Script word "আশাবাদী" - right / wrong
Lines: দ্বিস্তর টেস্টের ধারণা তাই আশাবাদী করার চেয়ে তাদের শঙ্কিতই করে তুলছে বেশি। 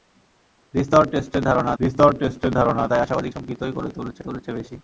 wrong